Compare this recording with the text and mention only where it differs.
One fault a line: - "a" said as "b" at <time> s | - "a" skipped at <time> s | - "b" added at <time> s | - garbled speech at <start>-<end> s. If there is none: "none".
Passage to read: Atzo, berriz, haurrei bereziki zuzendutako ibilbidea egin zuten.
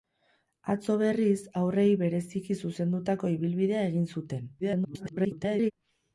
- garbled speech at 4.6-5.7 s